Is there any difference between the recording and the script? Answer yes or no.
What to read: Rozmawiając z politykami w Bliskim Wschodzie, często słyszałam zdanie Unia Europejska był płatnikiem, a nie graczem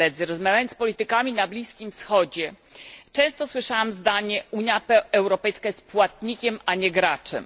yes